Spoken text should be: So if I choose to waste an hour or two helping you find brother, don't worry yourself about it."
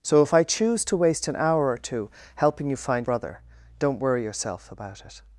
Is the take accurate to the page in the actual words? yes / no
yes